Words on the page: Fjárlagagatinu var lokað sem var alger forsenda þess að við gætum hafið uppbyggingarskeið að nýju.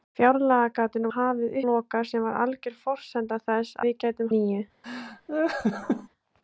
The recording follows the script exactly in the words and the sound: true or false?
false